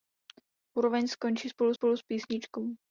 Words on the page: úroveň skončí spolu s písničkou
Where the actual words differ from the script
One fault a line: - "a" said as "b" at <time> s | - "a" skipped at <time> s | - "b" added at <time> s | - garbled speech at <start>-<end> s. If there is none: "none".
- "spolu" added at 1.7 s